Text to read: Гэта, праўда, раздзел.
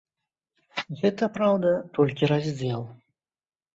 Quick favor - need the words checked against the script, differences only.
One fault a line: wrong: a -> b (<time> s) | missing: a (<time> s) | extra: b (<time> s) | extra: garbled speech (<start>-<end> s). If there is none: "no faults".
extra: толькі (2.0 s)